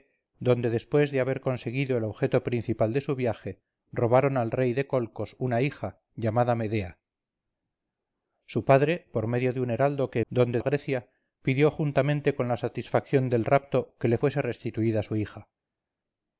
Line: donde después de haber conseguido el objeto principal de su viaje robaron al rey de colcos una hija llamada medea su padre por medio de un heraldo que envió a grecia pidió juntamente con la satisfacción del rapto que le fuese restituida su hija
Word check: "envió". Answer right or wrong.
wrong